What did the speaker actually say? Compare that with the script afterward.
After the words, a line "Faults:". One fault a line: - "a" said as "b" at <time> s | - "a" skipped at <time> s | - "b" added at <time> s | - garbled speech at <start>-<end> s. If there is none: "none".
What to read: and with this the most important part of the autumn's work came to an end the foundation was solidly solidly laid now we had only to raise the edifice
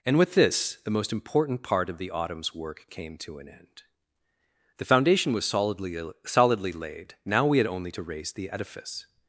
and with this the most important part of the autumn's work came to an end the foundation was solidly solidly laid now we had only to raise the edifice
Faults:
none